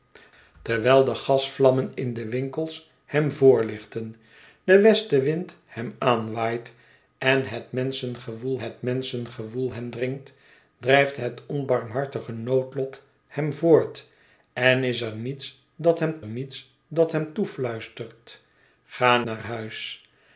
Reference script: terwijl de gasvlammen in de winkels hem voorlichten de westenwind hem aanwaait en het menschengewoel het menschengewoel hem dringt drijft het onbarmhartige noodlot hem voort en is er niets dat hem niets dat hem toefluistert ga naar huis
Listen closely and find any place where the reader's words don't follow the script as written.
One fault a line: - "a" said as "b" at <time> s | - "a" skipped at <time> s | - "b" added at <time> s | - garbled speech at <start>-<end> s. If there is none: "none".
none